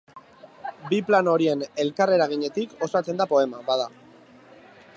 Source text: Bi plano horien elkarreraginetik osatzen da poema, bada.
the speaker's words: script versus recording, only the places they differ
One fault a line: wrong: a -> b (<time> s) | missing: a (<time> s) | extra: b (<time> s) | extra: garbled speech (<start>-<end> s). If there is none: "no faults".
no faults